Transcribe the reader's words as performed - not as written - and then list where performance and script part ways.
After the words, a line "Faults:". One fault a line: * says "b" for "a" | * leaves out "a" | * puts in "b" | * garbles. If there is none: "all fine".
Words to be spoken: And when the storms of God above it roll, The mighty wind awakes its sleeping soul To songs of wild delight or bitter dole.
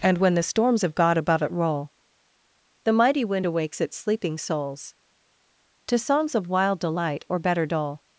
And when the storms of God above it roll, The mighty wind awakes its sleeping souls To songs of wild delight or better dole.
Faults:
* says "souls" for "soul"
* says "better" for "bitter"